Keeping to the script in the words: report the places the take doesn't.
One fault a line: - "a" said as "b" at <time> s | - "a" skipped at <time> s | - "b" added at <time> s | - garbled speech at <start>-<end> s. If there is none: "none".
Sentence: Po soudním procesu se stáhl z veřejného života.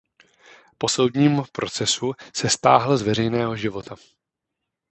none